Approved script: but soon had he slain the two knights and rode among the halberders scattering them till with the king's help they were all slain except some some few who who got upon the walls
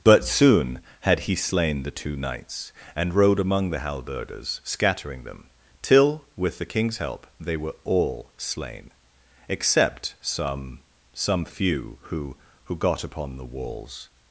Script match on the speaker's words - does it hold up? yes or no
yes